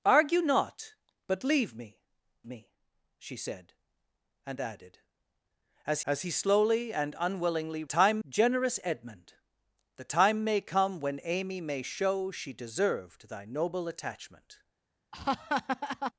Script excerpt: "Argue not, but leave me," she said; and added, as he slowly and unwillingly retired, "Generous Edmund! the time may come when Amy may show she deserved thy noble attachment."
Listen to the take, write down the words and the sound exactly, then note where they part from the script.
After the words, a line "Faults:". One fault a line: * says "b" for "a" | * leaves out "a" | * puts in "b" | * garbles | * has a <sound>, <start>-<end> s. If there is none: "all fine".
"Argue not, but leave me me," she said; and added, as as he slowly and unwillingly time, "Generous Edmund! the time may come when Amy may show she deserved thy noble attachment."
Faults:
* puts in "me"
* puts in "as"
* says "time" for "retired"
* has a laugh, 15.1-16.1 s